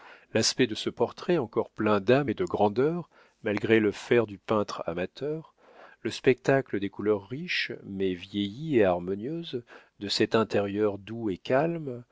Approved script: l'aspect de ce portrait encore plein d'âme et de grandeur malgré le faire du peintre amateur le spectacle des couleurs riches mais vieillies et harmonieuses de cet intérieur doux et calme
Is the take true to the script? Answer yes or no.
yes